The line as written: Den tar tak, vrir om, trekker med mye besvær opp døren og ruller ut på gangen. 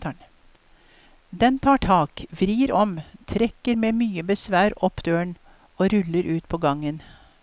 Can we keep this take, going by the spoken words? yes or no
yes